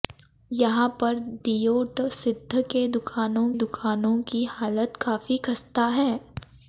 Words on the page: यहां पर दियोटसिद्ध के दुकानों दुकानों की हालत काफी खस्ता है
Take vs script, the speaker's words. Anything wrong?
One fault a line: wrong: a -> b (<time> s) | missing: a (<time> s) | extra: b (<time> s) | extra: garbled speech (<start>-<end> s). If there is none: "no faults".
no faults